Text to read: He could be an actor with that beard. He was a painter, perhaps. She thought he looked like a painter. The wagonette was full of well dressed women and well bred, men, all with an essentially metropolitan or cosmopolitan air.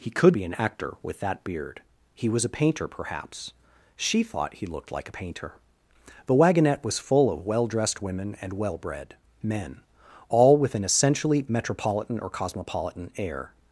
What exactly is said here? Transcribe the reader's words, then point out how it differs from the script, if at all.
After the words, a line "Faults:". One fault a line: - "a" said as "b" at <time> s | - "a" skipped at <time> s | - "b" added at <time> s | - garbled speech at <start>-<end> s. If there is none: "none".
He could be an actor with that beard. He was a painter, perhaps. She thought he looked like a painter. The wagonette was full of well dressed women and well bred, men, all with an essentially metropolitan or cosmopolitan air.
Faults:
none